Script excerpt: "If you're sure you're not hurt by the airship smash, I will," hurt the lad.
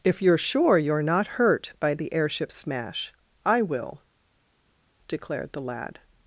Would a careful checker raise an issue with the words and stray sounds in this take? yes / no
yes